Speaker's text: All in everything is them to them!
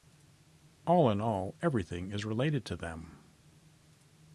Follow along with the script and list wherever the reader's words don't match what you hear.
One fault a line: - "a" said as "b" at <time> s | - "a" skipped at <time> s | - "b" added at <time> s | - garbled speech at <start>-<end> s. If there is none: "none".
- "all" added at 1.2 s
- "them" said as "related" at 2.2 s